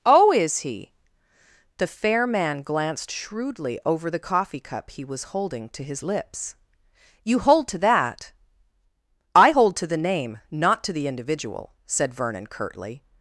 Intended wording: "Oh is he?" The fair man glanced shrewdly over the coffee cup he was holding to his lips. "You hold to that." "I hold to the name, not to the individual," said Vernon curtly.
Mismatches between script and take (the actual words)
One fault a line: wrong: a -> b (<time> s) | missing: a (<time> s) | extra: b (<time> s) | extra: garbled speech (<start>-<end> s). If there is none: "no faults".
no faults